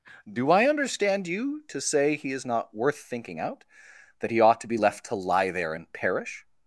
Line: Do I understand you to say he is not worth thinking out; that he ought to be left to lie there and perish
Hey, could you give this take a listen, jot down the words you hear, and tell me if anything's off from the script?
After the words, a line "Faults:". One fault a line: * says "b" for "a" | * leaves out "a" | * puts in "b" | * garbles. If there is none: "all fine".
Do I understand you to say he is not worth thinking out; that he ought to be left to lie there and perish
Faults:
all fine